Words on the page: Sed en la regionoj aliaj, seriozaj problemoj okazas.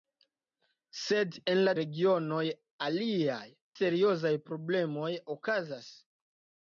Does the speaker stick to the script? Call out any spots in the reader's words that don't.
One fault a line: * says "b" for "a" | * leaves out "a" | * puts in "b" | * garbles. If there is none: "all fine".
all fine